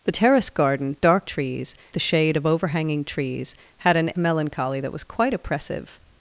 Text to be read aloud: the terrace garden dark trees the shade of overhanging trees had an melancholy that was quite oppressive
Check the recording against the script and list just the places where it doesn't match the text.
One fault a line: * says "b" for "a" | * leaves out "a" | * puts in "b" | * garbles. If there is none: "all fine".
all fine